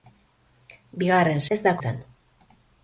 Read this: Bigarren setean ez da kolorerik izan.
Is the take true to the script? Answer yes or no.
no